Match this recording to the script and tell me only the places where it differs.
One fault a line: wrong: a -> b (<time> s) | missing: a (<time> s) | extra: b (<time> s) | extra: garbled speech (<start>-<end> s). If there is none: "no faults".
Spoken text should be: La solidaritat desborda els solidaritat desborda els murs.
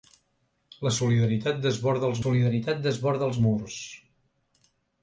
no faults